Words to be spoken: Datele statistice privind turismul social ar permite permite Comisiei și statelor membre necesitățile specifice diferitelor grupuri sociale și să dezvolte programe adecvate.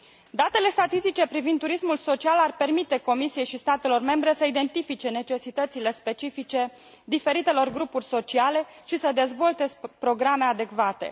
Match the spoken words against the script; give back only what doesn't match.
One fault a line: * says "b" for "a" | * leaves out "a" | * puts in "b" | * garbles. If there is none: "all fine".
* leaves out "permite"
* puts in "să identifice"